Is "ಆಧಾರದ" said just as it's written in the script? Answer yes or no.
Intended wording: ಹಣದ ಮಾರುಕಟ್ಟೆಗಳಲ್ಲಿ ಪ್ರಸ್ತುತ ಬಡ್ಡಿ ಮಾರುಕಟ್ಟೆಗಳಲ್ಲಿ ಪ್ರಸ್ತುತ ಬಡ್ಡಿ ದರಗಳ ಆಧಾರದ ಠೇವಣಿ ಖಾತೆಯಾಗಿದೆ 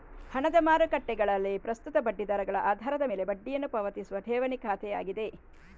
no